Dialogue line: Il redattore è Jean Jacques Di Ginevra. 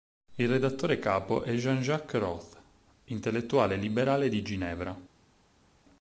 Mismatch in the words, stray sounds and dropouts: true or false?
true